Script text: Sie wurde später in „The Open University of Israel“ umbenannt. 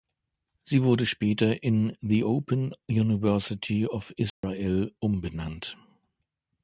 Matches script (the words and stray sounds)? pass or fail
fail